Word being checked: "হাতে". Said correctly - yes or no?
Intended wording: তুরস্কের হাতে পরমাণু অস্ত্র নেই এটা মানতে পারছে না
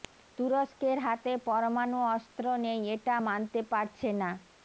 yes